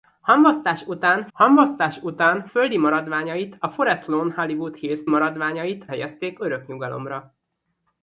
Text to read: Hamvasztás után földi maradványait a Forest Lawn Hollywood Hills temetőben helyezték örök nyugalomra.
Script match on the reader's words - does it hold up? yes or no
no